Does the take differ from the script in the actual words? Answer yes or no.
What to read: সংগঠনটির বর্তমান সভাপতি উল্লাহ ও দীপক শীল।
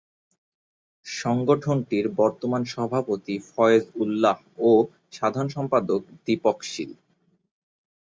yes